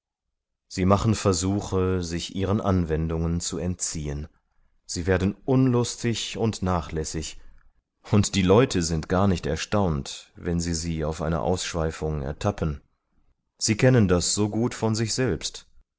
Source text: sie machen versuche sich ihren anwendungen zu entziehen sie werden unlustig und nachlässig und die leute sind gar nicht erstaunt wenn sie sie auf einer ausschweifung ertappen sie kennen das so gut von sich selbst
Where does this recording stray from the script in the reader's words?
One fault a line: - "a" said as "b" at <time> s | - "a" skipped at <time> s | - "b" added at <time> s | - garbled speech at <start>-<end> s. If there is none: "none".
none